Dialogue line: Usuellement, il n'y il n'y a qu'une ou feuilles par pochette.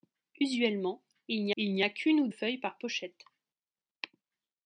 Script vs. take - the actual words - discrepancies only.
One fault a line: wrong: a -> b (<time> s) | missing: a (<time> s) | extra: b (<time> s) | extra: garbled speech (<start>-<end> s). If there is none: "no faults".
no faults